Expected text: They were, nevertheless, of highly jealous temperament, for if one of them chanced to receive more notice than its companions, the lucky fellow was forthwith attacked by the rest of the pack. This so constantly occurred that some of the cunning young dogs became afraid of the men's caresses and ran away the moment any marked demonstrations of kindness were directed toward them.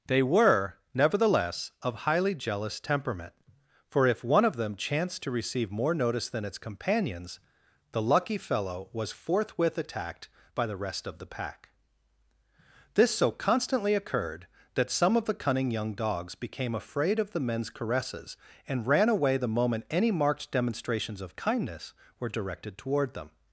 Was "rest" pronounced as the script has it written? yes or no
yes